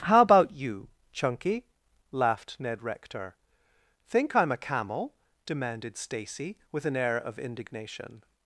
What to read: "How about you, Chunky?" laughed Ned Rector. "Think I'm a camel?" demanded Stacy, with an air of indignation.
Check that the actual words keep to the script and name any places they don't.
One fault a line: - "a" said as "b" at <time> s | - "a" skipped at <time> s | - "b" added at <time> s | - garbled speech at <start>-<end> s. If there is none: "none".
none